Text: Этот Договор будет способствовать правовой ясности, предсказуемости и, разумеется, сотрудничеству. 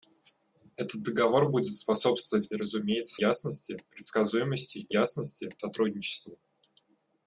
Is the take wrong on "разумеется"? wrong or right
wrong